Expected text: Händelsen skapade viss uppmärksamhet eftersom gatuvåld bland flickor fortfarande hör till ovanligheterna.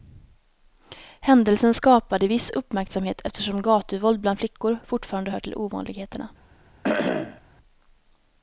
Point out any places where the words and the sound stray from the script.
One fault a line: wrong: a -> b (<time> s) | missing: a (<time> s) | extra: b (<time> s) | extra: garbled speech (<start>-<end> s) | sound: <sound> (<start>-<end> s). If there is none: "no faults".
sound: cough (6.8-7.4 s)